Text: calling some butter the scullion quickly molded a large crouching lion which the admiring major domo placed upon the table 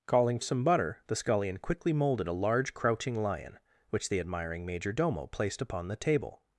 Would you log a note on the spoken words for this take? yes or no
no